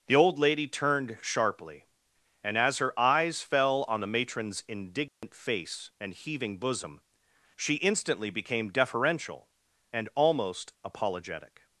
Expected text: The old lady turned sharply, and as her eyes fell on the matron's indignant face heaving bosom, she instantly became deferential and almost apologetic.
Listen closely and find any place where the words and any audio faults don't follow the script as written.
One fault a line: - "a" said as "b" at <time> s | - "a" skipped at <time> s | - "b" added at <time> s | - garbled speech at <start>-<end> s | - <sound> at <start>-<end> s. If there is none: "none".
- dropout at 5.1-5.2 s
- "and" added at 6.0 s